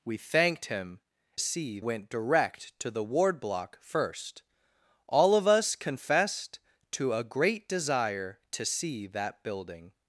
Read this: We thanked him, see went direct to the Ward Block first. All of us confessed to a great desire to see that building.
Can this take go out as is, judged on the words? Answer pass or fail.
pass